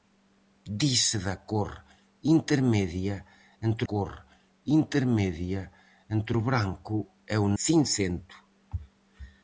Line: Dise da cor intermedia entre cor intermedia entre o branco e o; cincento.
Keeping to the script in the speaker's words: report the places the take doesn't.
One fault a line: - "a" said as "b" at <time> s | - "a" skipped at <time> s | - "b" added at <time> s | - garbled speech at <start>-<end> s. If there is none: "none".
none